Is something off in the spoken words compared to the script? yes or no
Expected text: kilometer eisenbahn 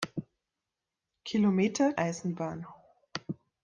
no